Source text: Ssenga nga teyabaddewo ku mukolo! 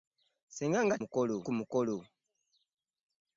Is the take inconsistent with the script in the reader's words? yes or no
yes